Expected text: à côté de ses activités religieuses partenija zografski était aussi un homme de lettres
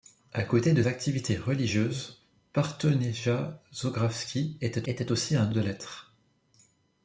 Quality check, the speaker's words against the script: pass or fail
fail